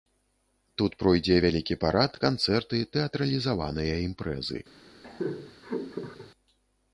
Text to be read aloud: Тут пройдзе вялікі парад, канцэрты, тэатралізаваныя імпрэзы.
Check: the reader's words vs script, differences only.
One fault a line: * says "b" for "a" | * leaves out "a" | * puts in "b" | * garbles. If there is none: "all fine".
all fine